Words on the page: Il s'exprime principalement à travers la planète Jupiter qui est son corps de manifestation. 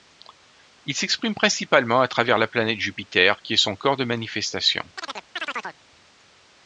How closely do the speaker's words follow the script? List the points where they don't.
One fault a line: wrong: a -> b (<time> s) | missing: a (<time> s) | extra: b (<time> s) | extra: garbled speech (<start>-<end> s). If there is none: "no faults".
no faults